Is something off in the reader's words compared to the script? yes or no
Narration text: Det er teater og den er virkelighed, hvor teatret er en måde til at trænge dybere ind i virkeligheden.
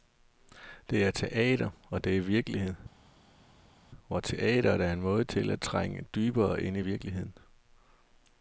yes